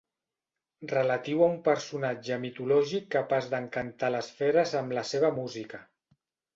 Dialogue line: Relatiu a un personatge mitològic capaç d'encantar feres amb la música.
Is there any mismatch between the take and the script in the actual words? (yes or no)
yes